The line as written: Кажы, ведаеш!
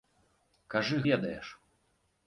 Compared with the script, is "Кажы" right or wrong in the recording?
right